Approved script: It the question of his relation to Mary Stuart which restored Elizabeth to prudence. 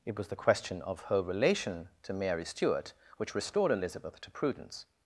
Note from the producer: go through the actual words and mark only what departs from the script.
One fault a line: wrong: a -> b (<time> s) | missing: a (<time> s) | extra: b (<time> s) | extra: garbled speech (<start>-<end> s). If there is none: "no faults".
extra: was (0.2 s)
wrong: his -> her (1.1 s)